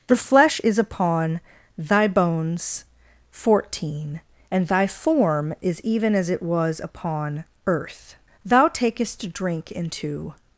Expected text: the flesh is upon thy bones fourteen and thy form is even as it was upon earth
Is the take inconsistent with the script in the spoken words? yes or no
yes